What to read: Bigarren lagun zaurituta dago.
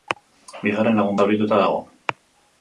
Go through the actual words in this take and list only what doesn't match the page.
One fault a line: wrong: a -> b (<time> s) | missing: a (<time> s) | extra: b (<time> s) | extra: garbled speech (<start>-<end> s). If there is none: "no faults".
no faults